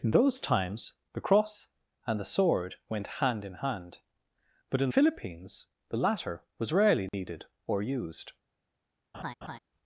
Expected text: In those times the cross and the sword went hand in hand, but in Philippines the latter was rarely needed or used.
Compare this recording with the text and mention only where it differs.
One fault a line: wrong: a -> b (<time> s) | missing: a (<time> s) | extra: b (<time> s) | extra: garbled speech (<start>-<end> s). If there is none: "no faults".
no faults